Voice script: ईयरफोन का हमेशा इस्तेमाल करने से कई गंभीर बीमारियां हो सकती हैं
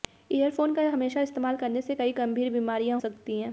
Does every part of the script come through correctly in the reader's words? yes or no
no